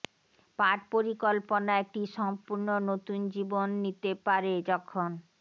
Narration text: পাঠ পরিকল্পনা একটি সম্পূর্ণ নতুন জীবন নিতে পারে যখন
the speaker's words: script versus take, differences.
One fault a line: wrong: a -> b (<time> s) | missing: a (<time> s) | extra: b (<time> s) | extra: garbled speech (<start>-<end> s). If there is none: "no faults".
no faults